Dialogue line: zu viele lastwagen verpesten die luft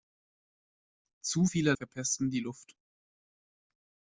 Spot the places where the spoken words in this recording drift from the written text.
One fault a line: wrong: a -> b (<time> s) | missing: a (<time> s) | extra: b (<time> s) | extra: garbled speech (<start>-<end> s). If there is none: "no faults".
missing: lastwagen (1.7 s)